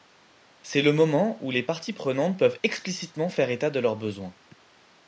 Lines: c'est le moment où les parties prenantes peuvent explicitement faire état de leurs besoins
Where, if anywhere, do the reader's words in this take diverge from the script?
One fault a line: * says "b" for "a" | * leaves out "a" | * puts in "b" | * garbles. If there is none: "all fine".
all fine